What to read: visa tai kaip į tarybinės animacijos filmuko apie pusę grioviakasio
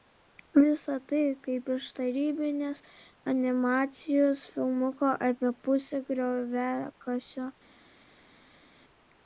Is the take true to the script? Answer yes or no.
no